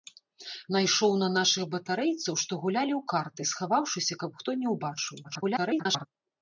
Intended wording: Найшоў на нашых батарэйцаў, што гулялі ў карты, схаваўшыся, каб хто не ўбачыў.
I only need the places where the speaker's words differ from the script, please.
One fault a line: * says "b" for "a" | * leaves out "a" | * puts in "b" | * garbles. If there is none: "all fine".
* garbles